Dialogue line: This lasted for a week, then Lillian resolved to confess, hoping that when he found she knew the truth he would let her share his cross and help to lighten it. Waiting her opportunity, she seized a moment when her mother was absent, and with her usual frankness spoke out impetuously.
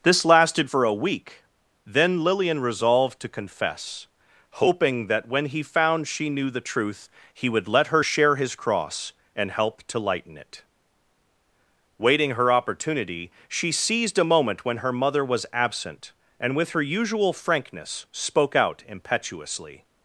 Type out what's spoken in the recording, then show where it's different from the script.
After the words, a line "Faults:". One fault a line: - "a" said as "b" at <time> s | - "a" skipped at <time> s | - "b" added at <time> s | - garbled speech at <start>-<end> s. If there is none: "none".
This lasted for a week, then Lillian resolved to confess, hoping that when he found she knew the truth he would let her share his cross and help to lighten it. Waiting her opportunity, she seized a moment when her mother was absent, and with her usual frankness spoke out impetuously.
Faults:
none